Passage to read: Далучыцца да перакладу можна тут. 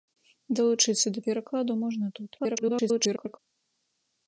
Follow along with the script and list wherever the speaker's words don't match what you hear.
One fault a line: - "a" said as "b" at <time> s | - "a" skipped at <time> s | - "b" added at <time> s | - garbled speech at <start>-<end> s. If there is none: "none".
- garbled speech at 2.4-3.4 s